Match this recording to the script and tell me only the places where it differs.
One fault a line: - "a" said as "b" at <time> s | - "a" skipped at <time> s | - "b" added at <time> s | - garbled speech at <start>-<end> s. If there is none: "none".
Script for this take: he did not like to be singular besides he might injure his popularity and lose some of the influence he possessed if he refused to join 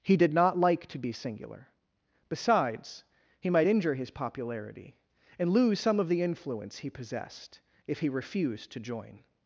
none